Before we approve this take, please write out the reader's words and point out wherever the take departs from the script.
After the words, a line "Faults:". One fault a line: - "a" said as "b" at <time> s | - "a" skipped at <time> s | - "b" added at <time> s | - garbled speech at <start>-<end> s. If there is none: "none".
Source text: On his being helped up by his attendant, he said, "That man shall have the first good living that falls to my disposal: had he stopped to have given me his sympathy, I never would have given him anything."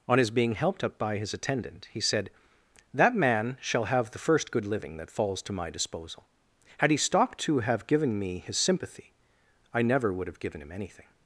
On his being helped up by his attendant, he said, "That man shall have the first good living that falls to my disposal: had he stopped to have given me his sympathy, I never would have given him anything."
Faults:
none